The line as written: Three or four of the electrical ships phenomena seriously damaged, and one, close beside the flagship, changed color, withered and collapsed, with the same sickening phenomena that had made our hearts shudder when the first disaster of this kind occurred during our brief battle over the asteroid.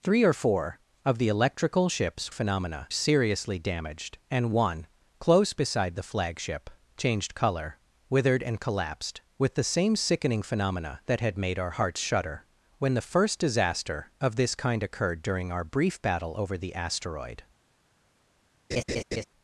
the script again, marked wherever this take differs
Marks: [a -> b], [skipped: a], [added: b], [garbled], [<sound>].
Three or four of the electrical ships phenomena seriously damaged, and one, close beside the flagship, changed color, withered and collapsed, with the same sickening phenomena that had made our hearts shudder when the first disaster of this kind occurred during our brief battle over the asteroid. [laugh]